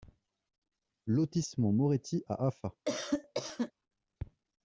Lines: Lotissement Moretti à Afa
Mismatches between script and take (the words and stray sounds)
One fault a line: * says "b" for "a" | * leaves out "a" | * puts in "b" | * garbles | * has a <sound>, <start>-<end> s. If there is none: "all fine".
* has a cough, 2.9-3.7 s